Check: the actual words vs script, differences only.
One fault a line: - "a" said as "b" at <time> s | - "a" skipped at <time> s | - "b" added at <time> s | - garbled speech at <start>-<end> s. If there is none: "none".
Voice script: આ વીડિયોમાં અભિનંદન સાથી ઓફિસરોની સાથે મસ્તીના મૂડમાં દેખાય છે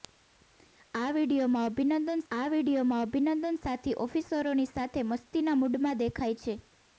- "આ વીડિયોમાં અભિનંદન" added at 2.3 s